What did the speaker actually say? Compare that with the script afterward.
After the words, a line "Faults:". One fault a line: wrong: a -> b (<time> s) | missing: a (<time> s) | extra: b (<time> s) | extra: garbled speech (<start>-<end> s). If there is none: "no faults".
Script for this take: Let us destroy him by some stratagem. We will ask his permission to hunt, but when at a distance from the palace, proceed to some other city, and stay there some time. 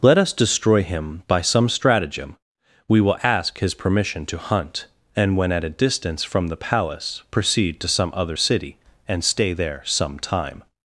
Let us destroy him by some stratagem. We will ask his permission to hunt, and when at a distance from the palace, proceed to some other city, and stay there some time.
Faults:
wrong: but -> and (5.2 s)